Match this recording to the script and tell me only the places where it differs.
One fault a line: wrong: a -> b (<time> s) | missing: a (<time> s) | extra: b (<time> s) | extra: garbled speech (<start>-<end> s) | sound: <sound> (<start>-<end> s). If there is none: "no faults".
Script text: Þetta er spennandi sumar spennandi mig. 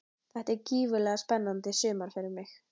extra: gífurlega (0.7 s)
wrong: spennandi -> fyrir (2.2 s)